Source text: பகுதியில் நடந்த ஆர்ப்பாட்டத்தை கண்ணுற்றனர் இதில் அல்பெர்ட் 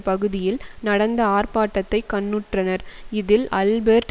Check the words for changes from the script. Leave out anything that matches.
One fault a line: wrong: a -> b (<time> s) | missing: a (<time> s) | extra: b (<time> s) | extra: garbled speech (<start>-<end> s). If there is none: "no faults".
no faults